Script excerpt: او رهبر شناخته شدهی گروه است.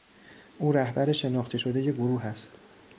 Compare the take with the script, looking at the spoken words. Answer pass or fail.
pass